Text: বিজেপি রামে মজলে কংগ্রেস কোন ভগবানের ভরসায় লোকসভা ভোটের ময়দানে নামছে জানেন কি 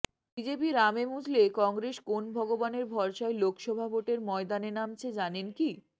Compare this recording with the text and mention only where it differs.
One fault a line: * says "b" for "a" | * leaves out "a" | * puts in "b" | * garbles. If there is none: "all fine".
all fine